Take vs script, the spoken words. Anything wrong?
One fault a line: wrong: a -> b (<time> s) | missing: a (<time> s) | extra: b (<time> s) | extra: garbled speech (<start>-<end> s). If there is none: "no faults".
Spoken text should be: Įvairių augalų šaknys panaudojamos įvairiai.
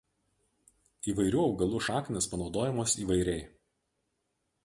no faults